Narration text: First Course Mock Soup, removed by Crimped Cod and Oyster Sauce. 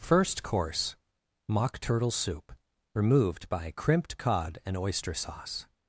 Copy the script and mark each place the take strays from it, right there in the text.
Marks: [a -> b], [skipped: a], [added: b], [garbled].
First Course Mock [added: Turtle] Soup, removed by Crimped Cod and Oyster Sauce.